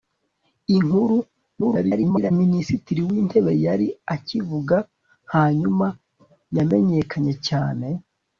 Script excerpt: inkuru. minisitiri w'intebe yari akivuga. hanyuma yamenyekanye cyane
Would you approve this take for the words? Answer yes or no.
no